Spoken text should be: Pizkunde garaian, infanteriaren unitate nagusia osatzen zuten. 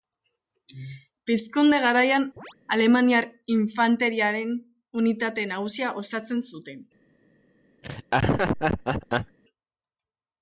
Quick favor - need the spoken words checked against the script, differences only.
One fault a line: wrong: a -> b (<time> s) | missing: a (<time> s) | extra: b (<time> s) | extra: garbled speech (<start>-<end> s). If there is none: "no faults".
extra: alemaniar (2.8 s)